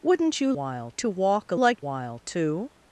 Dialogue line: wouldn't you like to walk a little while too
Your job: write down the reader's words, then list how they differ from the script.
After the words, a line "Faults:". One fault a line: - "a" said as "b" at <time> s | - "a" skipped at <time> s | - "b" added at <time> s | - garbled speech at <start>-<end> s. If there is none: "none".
wouldn't you while to walk a like while too
Faults:
- "like" said as "while" at 0.5 s
- "little" said as "like" at 1.5 s